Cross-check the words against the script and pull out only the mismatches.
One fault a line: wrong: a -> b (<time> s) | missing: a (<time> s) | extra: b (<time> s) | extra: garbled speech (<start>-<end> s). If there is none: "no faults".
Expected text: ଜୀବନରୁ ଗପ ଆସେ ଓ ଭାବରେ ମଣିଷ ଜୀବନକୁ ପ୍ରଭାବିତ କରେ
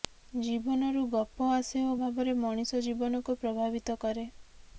no faults